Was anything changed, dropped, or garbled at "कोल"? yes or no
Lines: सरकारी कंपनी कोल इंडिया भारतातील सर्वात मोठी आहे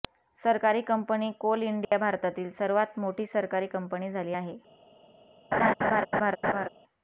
no